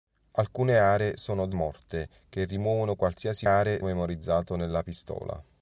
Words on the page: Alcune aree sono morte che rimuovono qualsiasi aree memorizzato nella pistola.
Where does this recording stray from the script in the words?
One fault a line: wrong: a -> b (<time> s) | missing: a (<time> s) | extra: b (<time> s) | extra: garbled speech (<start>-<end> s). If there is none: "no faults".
no faults